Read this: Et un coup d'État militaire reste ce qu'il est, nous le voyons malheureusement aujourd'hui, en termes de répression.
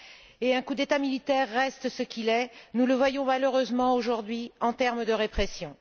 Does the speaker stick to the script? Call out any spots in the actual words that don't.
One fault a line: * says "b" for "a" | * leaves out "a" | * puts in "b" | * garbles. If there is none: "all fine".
all fine